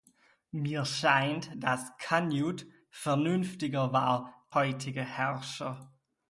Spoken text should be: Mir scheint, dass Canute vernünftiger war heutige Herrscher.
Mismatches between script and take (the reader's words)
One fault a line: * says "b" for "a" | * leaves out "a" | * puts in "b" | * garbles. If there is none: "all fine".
all fine